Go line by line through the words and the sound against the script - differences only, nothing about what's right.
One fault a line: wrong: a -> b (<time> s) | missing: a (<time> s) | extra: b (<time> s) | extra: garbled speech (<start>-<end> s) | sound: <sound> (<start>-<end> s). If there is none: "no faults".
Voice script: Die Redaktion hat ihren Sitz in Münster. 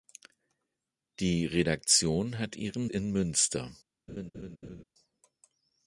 missing: Sitz (2.9 s)
sound: laugh (4.1-4.8 s)